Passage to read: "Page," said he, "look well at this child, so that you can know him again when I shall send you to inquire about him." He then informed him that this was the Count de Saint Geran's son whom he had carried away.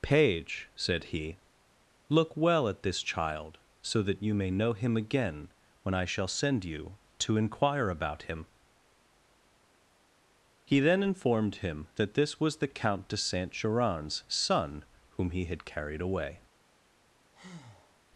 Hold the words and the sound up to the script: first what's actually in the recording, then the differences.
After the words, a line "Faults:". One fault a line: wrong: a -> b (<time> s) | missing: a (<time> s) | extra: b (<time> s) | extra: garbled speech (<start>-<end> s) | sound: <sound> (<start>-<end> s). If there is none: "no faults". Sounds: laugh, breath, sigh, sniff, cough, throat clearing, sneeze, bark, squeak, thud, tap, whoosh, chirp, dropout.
"Page," said he, "look well at this child, so that you may know him again when I shall send you to inquire about him." He then informed him that this was the Count de Saint Geran's son whom he had carried away.
Faults:
wrong: can -> may (4.3 s)
sound: breath (17.3-18.0 s)